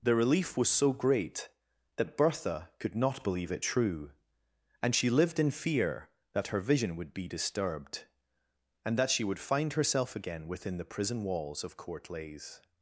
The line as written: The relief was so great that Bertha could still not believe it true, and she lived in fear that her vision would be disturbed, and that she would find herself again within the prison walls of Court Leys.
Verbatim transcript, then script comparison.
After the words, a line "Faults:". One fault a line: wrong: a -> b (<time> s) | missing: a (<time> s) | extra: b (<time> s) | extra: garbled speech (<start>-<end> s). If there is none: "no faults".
The relief was so great that Bertha could not believe it true, and she lived in fear that her vision would be disturbed, and that she would find herself again within the prison walls of Court Leys.
Faults:
missing: still (3.0 s)